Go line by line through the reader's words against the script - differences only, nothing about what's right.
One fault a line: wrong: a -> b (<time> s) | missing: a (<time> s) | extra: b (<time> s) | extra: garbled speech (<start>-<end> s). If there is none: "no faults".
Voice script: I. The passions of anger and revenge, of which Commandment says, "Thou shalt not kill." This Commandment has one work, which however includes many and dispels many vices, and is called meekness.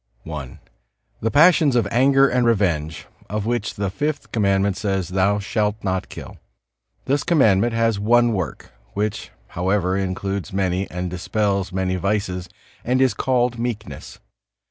extra: the Fifth (3.7 s)